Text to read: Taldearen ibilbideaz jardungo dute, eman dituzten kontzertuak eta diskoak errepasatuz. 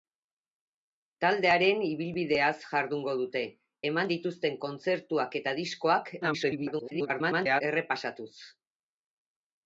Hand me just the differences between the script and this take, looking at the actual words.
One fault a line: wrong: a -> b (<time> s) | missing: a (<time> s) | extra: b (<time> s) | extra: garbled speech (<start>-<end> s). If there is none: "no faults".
extra: garbled speech (6.2-7.6 s)